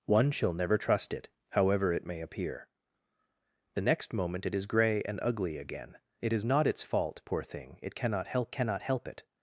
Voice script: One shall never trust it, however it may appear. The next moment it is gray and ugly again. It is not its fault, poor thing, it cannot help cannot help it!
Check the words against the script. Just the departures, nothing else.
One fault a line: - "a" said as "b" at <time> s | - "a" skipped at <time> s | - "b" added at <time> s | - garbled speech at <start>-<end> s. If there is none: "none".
none